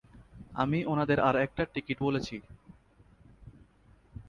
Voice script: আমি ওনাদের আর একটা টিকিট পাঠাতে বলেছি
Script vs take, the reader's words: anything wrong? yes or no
yes